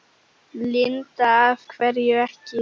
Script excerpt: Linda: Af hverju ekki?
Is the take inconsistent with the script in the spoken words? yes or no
no